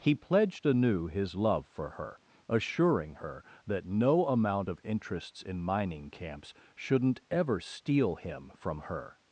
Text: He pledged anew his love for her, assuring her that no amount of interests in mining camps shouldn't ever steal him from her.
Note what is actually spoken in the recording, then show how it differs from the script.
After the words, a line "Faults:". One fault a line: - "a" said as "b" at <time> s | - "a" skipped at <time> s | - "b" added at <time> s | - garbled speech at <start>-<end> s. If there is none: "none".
He pledged anew his love for her, assuring her that no amount of interests in mining camps shouldn't ever steal him from her.
Faults:
none